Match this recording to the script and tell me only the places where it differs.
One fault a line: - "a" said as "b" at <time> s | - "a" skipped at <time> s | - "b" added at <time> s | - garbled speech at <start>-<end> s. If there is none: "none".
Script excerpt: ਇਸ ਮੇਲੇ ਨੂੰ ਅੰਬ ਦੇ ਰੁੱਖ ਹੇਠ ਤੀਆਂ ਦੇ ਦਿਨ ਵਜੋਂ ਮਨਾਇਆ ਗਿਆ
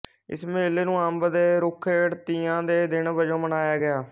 none